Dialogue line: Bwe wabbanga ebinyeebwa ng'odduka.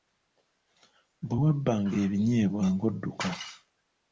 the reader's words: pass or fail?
pass